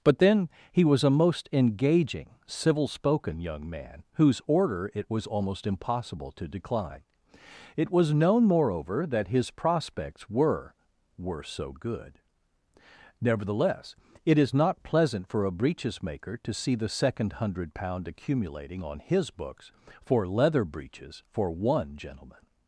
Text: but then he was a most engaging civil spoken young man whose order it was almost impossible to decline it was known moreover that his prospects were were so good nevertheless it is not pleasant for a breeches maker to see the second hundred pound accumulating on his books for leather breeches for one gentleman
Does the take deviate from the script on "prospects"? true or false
false